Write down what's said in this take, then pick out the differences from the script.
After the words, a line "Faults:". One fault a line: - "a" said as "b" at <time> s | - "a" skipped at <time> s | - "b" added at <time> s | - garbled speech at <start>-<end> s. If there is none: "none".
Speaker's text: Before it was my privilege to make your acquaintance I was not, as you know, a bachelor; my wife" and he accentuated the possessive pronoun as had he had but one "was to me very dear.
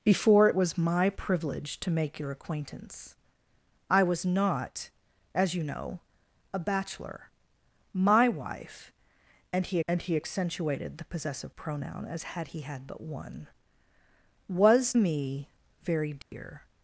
Before it was my privilege to make your acquaintance I was not, as you know, a bachelor; my wife" and he and he accentuated the possessive pronoun as had he had but one "was me very dear.
Faults:
- "and he" added at 9.9 s
- "to" skipped at 14.9 s